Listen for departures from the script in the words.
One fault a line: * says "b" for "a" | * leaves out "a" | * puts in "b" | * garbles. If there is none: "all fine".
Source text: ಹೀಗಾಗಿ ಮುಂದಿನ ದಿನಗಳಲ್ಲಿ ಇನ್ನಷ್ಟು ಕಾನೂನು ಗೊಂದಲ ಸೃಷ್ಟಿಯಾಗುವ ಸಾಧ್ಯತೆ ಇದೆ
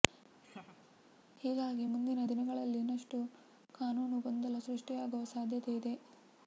all fine